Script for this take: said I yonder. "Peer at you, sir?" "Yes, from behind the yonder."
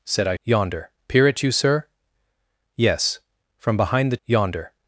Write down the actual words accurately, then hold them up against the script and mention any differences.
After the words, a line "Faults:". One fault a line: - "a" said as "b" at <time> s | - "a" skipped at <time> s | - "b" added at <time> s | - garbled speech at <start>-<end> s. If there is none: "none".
said I yonder. "Peer at you, sir?" "Yes, from behind the yonder."
Faults:
none